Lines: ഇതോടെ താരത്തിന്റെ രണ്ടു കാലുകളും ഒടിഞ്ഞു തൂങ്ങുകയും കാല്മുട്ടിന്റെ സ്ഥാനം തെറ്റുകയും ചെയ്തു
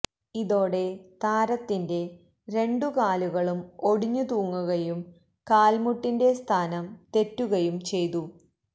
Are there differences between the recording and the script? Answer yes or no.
no